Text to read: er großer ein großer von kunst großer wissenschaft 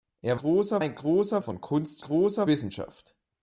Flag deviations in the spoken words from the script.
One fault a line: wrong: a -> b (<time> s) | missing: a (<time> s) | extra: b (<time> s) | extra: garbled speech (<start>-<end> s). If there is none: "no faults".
no faults